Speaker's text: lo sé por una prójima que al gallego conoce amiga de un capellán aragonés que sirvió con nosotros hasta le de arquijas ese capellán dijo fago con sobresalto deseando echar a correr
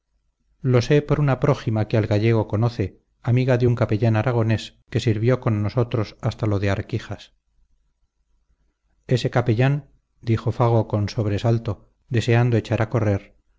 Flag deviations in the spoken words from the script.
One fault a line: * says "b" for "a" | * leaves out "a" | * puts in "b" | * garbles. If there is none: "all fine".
* says "lo" for "le"